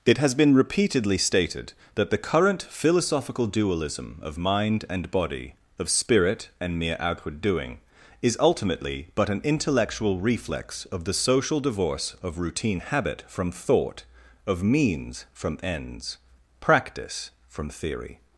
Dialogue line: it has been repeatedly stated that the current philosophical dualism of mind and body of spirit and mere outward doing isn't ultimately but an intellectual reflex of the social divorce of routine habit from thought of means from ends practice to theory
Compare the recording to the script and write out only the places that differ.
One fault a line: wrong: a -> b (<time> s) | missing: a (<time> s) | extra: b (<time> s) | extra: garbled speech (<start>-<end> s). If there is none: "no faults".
wrong: isn't -> is (8.2 s)
wrong: to -> from (17.4 s)